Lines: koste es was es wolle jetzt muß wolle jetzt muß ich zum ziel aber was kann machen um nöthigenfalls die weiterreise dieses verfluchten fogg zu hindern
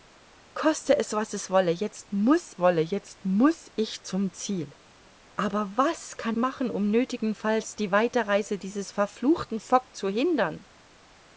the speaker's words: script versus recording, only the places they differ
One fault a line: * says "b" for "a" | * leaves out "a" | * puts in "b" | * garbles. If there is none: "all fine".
all fine